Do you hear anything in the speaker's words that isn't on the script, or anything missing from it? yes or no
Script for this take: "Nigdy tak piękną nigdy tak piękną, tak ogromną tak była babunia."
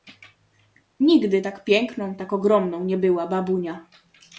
yes